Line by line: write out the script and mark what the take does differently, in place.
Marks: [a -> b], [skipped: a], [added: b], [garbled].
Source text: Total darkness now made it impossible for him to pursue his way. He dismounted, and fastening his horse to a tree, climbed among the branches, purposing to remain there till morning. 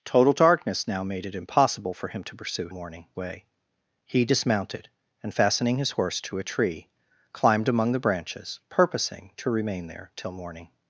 Total darkness now made it impossible for him to pursue [his -> morning] way. He dismounted, and fastening his horse to a tree, climbed among the branches, purposing to remain there till morning.